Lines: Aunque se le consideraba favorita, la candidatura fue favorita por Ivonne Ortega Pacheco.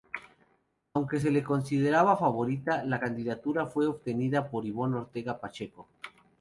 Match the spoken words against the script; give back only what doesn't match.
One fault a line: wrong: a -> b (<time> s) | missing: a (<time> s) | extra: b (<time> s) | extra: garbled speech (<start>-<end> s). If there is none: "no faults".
wrong: favorita -> obtenida (3.9 s)